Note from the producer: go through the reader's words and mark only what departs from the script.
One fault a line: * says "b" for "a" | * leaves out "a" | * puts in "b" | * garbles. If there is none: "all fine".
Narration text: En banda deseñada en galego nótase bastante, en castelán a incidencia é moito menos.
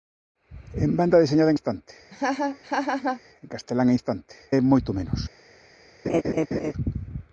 * leaves out "galego nótase"
* says "bastante" for "incidencia"